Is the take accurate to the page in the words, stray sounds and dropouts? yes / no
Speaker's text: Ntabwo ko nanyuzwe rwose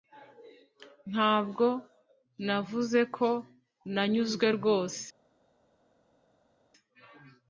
no